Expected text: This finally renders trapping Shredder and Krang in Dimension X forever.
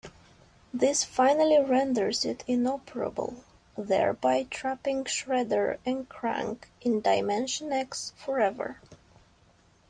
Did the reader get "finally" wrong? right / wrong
right